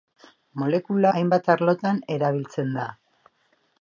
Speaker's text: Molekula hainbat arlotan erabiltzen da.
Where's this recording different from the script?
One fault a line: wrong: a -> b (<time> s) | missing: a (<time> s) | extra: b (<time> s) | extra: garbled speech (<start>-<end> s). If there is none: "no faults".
no faults